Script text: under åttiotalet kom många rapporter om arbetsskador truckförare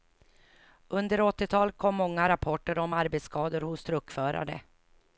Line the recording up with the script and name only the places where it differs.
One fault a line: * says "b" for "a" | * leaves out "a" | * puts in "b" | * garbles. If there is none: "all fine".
* puts in "hos"